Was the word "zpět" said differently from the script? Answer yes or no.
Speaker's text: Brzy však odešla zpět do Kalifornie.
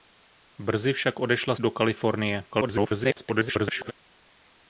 yes